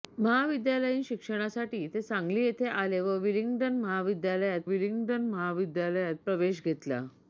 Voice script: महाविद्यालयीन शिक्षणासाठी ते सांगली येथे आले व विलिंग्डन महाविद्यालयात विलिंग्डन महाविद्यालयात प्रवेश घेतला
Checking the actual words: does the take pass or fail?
pass